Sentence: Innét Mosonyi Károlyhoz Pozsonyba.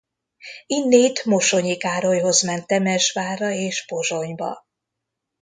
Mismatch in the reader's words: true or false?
true